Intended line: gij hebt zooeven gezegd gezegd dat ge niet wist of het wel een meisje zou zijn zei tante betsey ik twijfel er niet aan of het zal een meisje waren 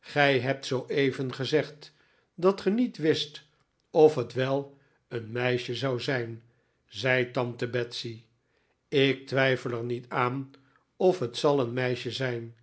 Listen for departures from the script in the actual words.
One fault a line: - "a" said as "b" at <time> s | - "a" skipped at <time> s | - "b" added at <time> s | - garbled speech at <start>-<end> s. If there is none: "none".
- "gezegd" skipped at 1.9 s
- "waren" said as "zijn" at 12.1 s